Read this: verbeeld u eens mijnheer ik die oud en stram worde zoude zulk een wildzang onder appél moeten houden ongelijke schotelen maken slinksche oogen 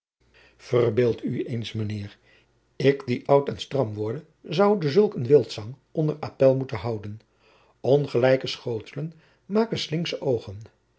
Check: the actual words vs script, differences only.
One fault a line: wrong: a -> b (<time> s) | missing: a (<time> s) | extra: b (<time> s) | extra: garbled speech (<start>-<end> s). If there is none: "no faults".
no faults